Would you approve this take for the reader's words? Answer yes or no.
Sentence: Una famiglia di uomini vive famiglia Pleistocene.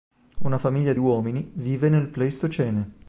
no